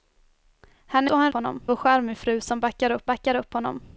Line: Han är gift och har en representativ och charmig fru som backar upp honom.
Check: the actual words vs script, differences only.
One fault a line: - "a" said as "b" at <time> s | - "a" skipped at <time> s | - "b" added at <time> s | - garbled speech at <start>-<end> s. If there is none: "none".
- "gift" skipped at 1.1 s
- "representativ" said as "honom" at 1.3 s
- "backar upp" added at 3.1 s